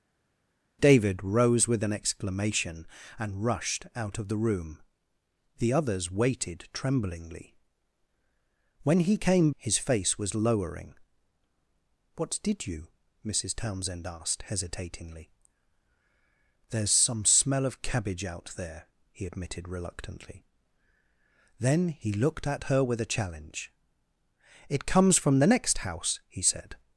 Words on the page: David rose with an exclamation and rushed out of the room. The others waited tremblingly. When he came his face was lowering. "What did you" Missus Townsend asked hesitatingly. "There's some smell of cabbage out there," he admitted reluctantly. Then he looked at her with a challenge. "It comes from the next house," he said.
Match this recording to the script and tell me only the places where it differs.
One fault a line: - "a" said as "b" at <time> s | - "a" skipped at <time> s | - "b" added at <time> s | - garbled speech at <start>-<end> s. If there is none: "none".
none